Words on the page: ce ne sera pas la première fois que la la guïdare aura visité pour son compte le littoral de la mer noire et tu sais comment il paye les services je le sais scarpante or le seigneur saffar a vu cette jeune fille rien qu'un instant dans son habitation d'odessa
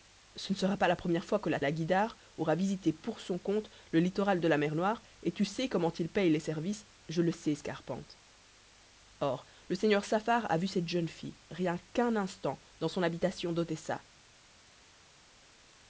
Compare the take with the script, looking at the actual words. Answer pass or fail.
pass